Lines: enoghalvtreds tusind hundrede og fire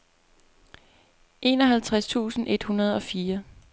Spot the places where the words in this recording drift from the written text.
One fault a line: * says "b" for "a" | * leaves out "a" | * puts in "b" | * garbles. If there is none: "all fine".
* puts in "et"